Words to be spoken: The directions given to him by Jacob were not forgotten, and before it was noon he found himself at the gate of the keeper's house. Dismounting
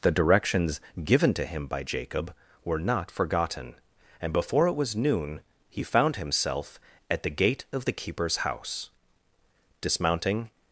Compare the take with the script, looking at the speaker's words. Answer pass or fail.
pass